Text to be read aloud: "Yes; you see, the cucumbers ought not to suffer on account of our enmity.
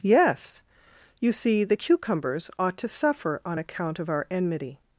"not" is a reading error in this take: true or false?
true